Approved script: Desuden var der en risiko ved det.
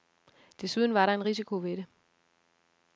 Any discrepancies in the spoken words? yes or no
no